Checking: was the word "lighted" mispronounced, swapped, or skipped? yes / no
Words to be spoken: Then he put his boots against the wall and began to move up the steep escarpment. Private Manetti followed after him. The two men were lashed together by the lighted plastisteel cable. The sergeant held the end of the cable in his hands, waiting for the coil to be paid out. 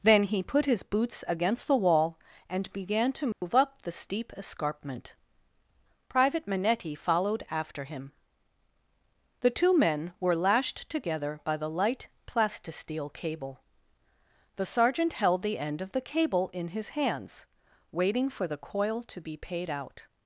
yes